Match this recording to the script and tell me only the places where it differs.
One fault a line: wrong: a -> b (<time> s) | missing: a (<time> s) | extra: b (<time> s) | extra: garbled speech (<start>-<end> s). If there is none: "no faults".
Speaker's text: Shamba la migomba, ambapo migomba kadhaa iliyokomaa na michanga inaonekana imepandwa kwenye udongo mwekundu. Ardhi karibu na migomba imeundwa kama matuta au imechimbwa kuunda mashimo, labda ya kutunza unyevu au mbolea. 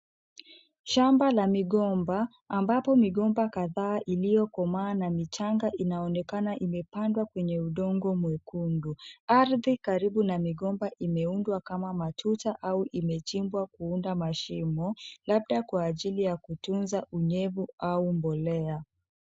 extra: kwa ajili (15.6 s)